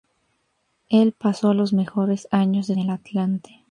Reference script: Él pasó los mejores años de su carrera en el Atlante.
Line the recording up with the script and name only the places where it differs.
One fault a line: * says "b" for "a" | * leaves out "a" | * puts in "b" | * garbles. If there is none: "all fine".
* leaves out "su carrera en"